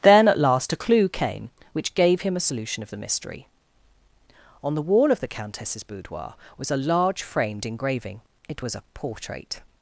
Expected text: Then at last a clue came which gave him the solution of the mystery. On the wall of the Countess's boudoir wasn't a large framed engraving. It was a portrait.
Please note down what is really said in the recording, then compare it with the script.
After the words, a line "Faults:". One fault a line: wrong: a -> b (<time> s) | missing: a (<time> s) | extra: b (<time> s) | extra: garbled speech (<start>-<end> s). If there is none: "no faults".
Then at last a clue came which gave him a solution of the mystery. On the wall of the Countess's boudoir was a large framed engraving. It was a portrait.
Faults:
wrong: the -> a (2.4 s)
wrong: wasn't -> was (6.6 s)